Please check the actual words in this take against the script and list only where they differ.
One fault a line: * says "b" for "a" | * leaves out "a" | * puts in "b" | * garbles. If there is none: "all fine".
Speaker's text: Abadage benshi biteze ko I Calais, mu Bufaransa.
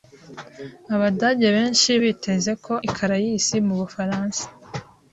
all fine